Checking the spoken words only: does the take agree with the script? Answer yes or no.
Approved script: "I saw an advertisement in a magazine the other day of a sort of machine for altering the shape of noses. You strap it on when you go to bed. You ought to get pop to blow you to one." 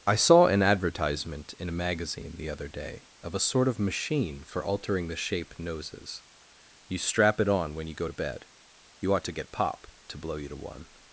no